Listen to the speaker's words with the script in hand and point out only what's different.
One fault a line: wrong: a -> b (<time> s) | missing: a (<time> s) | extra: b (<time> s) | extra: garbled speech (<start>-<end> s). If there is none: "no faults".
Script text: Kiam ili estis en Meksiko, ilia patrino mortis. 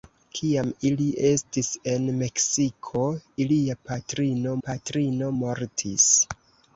extra: patrino (4.7 s)